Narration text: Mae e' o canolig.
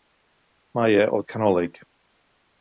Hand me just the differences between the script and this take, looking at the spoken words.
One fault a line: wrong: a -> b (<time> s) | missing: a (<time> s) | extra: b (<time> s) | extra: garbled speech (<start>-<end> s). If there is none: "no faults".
no faults